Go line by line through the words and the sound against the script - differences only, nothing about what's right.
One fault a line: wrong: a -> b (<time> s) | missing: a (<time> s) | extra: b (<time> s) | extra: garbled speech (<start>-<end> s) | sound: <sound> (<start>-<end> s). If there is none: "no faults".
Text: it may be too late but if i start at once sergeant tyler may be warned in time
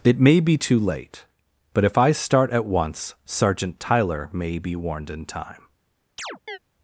sound: chirp (6.2-6.6 s)